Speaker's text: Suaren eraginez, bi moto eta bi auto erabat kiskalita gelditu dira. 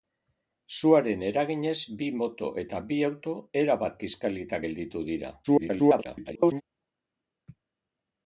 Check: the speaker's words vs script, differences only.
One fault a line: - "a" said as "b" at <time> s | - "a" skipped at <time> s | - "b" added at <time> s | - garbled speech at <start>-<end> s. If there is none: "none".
- garbled speech at 5.4-6.6 s